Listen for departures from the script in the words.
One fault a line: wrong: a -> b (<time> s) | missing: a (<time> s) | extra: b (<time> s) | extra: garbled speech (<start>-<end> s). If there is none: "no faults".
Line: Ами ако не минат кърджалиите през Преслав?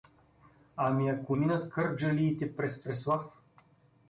missing: не (1.4 s)